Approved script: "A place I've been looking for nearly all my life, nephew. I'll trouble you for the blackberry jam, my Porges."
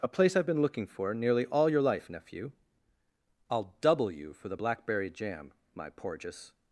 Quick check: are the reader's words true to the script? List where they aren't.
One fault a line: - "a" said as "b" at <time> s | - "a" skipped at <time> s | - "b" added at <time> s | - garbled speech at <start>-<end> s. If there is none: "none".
- "my" said as "your" at 1.7 s
- "trouble" said as "double" at 3.8 s